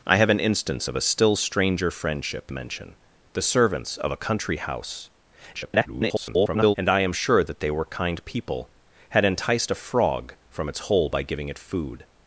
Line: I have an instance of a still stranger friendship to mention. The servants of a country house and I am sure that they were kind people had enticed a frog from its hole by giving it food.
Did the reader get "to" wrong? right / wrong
wrong